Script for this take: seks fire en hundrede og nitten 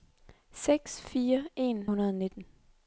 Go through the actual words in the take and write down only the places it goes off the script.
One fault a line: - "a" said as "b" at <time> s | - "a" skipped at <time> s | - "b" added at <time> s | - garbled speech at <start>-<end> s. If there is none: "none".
none